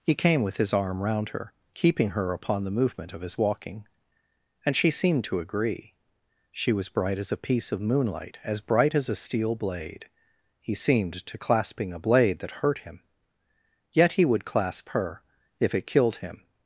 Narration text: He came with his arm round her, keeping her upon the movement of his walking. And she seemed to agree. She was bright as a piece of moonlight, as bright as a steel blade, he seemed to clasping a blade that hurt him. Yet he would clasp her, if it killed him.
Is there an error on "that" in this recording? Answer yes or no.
no